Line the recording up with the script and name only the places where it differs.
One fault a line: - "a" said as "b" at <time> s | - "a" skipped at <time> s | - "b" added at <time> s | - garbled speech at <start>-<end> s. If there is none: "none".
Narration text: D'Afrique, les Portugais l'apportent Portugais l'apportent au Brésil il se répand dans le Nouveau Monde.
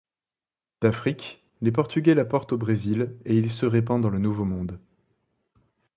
- "Portugais l'apportent" skipped at 2.5 s
- "et" added at 3.2 s